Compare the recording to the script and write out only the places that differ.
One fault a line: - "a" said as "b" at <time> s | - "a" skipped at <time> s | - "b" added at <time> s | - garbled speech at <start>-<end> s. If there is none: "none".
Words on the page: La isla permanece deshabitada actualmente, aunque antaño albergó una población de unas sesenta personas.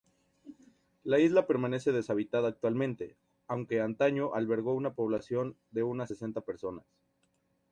none